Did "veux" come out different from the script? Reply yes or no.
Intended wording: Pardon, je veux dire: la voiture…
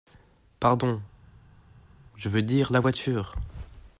no